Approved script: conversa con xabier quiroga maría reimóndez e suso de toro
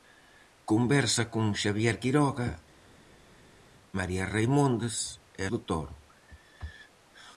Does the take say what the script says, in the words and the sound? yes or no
no